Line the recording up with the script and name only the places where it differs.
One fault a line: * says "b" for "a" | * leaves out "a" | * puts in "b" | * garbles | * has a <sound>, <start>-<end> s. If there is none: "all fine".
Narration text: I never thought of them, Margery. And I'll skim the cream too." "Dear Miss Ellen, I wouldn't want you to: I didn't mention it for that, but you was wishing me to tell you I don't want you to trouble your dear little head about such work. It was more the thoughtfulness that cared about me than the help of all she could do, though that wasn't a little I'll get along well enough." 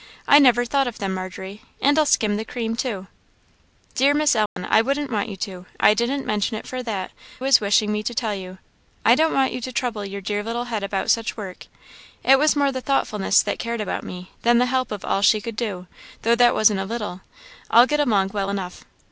* has a dropout, 4.5-4.6 s
* leaves out "but you"